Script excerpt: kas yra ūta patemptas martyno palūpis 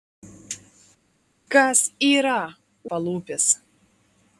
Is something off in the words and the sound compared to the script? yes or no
yes